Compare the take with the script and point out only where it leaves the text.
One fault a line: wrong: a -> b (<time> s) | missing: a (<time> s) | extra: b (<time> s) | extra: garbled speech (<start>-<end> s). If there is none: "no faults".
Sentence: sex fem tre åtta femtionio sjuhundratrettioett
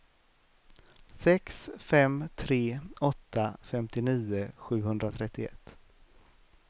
no faults